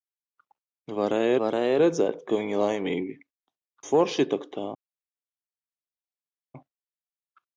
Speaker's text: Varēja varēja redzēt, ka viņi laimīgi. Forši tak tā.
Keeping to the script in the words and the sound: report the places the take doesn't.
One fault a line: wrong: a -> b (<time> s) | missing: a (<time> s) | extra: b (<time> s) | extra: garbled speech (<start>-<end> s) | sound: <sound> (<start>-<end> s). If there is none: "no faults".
no faults